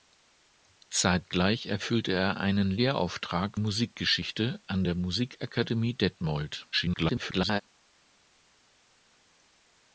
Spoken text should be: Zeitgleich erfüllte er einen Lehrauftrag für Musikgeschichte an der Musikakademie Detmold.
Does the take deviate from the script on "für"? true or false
true